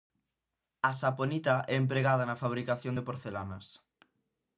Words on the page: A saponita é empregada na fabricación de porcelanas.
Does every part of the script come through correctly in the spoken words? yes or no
yes